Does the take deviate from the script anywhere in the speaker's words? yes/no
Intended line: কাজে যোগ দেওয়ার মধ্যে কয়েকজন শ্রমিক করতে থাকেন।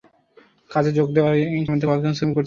no